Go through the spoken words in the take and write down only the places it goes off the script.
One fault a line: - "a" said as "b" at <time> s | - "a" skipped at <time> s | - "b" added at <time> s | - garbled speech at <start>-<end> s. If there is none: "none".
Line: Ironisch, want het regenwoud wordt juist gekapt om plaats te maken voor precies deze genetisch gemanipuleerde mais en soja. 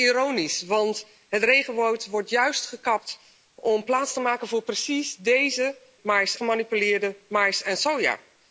- "genetisch" said as "mais" at 6.0 s